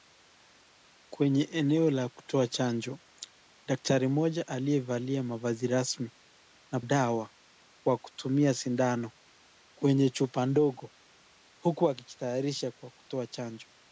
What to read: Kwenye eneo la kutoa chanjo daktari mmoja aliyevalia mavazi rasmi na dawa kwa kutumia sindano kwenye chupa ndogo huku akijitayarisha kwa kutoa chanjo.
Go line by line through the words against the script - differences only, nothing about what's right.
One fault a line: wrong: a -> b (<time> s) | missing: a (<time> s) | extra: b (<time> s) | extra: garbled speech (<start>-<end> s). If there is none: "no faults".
no faults